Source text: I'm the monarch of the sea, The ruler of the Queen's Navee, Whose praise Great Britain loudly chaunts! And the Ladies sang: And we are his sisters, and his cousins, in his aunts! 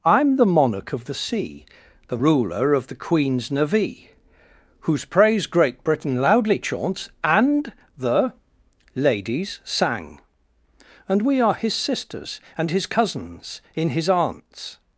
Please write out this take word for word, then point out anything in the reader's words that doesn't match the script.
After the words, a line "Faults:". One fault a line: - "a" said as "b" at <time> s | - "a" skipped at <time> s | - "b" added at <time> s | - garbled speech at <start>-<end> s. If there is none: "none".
I'm the monarch of the sea, The ruler of the Queen's Navee, Whose praise Great Britain loudly chaunts! And the Ladies sang: And we are his sisters, and his cousins, in his aunts!
Faults:
none